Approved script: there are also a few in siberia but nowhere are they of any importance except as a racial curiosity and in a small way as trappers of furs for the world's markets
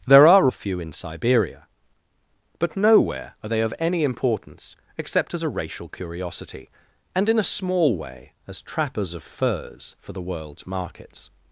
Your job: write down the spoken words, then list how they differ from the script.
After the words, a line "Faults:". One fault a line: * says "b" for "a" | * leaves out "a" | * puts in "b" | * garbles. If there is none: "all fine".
there are a few in siberia but nowhere are they of any importance except as a racial curiosity and in a small way as trappers of furs for the world's markets
Faults:
* leaves out "also"